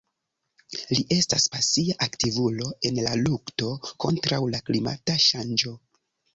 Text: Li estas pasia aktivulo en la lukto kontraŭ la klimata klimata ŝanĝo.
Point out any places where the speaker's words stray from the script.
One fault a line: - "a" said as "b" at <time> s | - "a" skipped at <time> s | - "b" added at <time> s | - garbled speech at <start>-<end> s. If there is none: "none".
- "klimata" skipped at 5.2 s